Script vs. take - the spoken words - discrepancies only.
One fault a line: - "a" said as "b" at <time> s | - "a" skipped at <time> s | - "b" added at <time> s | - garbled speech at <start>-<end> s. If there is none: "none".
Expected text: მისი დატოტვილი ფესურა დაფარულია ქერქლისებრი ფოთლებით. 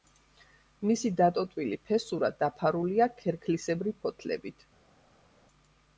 none